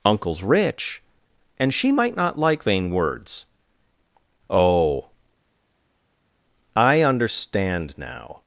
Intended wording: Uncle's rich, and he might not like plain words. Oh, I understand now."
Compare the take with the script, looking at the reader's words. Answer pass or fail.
fail